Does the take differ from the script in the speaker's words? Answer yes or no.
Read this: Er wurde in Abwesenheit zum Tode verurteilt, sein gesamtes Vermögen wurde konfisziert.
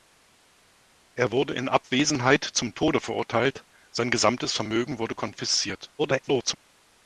yes